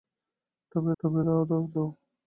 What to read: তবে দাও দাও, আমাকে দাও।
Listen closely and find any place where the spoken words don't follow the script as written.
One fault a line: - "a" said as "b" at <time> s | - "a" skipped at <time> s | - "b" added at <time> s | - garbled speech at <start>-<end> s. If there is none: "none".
- "তবে" added at 1.0 s
- "আমাকে" skipped at 1.6 s